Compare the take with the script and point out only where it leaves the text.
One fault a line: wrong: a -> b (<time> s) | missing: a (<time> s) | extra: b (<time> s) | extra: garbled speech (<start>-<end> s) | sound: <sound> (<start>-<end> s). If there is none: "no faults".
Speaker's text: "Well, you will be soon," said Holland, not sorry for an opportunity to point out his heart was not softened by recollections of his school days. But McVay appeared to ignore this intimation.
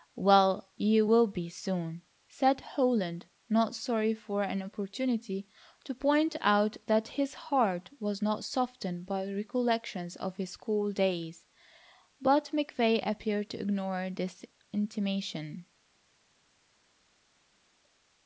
extra: that (6.9 s)